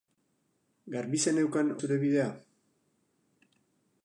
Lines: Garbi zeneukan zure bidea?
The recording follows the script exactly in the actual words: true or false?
true